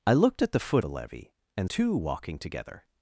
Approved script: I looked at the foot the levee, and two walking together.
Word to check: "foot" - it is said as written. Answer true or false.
true